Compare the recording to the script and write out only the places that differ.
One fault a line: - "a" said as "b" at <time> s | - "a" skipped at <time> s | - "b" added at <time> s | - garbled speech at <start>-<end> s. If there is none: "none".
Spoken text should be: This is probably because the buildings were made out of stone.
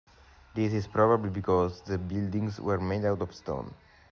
none